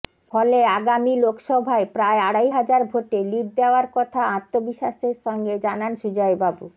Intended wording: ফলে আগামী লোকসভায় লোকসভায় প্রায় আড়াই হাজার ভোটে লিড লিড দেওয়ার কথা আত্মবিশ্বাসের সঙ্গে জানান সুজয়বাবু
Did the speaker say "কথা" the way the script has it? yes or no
yes